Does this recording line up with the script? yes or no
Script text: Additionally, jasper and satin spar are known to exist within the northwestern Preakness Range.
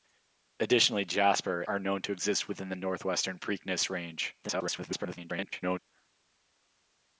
no